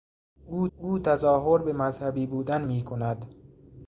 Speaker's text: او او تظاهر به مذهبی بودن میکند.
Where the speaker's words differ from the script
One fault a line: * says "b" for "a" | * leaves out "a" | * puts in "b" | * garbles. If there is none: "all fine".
all fine